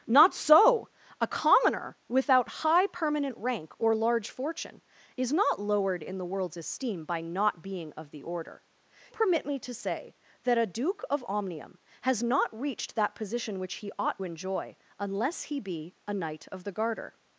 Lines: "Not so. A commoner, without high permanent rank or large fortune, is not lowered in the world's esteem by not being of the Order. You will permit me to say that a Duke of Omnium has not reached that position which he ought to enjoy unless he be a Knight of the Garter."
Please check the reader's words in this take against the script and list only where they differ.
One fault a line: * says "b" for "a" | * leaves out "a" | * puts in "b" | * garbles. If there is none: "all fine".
* leaves out "You will"
* leaves out "to"